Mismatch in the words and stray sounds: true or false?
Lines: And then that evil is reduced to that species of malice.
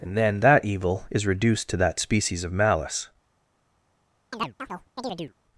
true